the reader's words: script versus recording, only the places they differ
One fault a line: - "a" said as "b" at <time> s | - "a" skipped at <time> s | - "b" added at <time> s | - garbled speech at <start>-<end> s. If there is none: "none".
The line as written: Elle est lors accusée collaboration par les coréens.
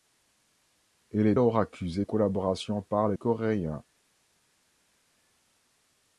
none